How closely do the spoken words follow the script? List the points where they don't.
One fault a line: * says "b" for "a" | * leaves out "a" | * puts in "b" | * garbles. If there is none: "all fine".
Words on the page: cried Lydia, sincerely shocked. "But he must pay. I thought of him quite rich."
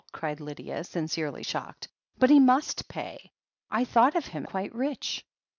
all fine